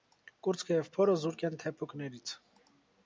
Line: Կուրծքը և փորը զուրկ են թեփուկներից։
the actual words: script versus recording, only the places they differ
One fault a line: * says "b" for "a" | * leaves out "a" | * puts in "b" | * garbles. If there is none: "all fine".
all fine